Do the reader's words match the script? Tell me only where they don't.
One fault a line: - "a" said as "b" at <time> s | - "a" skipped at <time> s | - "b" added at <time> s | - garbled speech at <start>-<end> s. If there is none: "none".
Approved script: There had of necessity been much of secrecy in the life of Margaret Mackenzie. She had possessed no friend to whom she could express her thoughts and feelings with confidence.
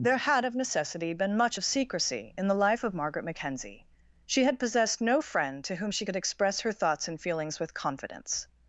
none